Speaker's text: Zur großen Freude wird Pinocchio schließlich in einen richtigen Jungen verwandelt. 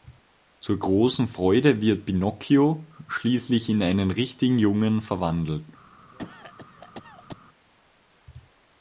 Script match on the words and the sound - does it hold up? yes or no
no